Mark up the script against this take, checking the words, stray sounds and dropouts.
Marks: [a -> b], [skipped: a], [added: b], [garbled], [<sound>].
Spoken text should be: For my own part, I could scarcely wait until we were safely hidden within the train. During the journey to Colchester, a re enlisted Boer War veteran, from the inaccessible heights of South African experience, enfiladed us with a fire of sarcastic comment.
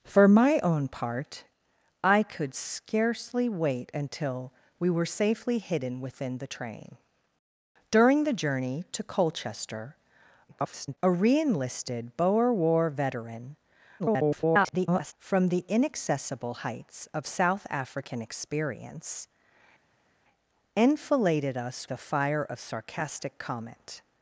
For my own part, I could scarcely wait until we were safely hidden within the train. During the journey to Colchester, [garbled] a re enlisted Boer War veteran, [garbled] from the inaccessible heights of South African experience, enfiladed us [skipped: with] a fire of sarcastic comment.